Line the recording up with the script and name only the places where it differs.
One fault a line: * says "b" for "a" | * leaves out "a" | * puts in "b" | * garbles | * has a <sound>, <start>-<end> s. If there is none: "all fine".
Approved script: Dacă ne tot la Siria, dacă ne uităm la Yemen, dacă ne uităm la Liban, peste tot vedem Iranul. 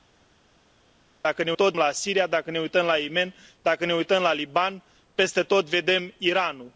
all fine